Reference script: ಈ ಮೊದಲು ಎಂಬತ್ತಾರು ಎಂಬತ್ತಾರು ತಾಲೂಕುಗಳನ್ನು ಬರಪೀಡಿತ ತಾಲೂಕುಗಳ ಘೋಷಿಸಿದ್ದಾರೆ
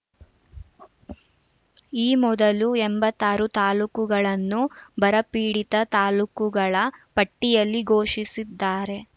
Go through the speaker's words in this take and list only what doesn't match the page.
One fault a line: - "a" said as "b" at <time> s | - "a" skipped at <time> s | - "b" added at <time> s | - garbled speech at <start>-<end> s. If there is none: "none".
- "ಎಂಬತ್ತಾರು" skipped at 3.5 s
- "ಪಟ್ಟಿಯಲ್ಲಿ" added at 7.2 s